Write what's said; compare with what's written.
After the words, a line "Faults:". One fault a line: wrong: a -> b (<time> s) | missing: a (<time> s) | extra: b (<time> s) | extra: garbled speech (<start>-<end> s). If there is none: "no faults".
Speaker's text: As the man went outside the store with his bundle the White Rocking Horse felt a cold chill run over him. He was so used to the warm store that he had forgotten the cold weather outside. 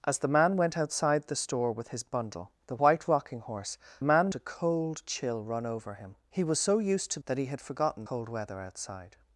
As the man went outside the store with his bundle the White Rocking Horse man a cold chill run over him. He was so used to that he had forgotten cold weather outside.
Faults:
wrong: felt -> man (4.0 s)
missing: the warm store (7.2 s)
missing: the (8.0 s)